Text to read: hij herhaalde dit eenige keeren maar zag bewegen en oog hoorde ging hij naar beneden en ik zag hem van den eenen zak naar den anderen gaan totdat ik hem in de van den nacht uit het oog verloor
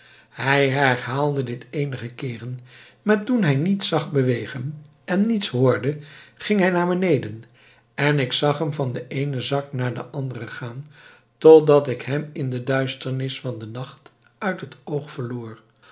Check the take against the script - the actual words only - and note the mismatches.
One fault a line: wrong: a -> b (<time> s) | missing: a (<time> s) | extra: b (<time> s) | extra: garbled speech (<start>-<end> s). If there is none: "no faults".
extra: toen hij niets (3.2 s)
wrong: oog -> niets (5.2 s)
extra: duisternis (12.6 s)